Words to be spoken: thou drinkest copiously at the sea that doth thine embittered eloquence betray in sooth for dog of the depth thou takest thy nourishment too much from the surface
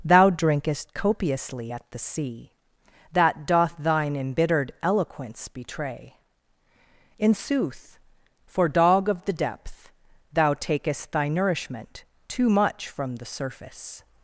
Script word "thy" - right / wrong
right